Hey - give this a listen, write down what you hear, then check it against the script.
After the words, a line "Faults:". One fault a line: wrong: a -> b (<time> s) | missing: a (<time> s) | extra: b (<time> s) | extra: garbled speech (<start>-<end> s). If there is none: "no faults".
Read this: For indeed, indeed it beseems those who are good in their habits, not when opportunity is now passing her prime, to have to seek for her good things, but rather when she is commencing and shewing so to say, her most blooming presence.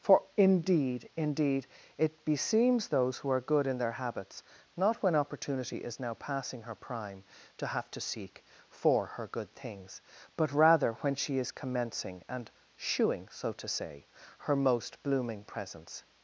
For indeed, indeed it beseems those who are good in their habits, not when opportunity is now passing her prime, to have to seek for her good things, but rather when she is commencing and shewing so to say, her most blooming presence.
Faults:
no faults